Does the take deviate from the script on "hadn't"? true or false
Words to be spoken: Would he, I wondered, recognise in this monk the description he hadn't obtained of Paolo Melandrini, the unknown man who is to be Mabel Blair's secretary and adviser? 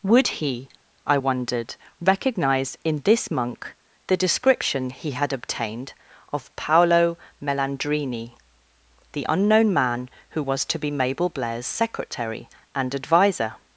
true